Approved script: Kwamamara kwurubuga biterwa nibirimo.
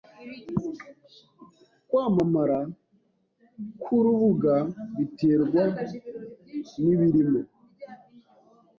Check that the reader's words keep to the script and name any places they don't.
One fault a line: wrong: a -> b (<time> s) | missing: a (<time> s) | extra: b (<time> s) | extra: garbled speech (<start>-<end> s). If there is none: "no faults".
no faults